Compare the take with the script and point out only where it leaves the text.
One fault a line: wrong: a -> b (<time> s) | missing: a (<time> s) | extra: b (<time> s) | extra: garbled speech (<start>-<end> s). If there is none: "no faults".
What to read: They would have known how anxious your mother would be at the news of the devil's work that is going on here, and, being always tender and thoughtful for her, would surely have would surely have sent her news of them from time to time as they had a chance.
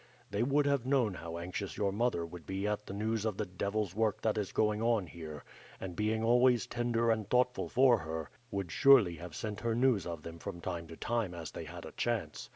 missing: would surely have (9.3 s)